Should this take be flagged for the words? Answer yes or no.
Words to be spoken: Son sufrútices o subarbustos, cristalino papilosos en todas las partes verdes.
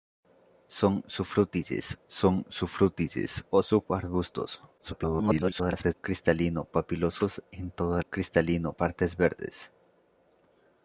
yes